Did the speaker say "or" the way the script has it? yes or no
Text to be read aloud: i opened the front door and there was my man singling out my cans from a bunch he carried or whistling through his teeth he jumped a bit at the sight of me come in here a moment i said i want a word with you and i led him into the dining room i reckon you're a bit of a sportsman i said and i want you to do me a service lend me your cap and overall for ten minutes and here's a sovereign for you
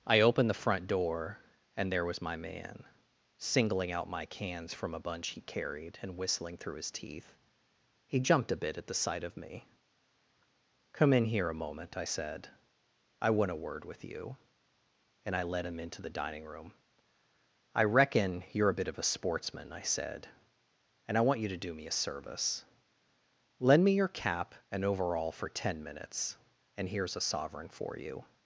no